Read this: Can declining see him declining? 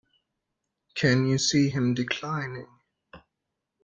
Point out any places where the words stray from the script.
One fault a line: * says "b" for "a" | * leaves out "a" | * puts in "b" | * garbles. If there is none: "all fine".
* says "you" for "declining"